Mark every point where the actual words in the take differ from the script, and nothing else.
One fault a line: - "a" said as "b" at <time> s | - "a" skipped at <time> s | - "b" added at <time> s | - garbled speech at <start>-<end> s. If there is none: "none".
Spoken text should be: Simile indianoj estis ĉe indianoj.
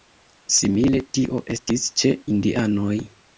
- "indianoj" said as "tio" at 1.2 s